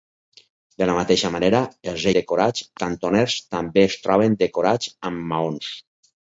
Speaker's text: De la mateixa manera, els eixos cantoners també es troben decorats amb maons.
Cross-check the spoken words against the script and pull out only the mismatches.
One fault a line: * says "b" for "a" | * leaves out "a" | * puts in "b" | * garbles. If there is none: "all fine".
* says "decorats" for "eixos"